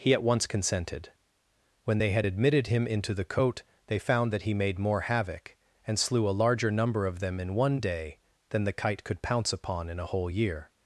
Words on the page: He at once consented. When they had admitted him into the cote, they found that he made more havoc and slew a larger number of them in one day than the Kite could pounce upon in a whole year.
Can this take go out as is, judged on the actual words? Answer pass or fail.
pass